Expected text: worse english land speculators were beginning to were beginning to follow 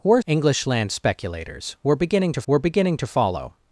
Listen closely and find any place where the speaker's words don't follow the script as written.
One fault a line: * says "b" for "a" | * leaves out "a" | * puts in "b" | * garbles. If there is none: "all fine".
all fine